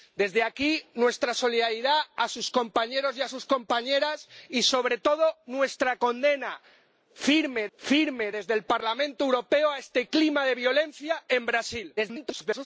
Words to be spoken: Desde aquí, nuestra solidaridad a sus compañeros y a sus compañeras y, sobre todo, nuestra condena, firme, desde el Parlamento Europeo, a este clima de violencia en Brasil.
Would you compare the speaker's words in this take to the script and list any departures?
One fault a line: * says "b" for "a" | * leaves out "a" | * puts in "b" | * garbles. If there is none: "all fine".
* puts in "firme"
* garbles